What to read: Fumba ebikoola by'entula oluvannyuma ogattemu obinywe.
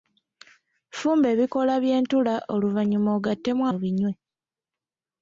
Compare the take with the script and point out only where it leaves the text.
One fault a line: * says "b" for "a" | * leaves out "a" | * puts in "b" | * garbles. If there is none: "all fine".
all fine